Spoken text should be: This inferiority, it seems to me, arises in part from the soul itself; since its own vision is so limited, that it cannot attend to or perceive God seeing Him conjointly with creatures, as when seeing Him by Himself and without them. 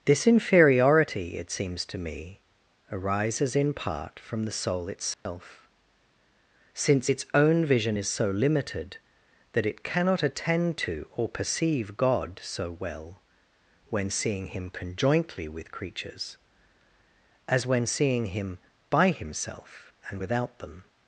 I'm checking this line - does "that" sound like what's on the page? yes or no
yes